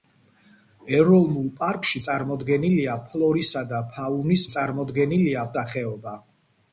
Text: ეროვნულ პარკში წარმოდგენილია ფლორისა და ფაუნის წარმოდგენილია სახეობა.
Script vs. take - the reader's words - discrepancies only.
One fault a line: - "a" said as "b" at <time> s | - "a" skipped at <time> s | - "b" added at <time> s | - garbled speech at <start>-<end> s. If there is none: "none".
none